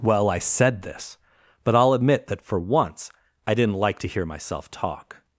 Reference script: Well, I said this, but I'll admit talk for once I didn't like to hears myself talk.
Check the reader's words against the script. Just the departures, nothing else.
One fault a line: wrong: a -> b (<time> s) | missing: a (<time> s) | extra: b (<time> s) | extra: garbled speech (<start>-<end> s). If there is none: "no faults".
wrong: talk -> that (2.3 s)
wrong: hears -> hear (4.1 s)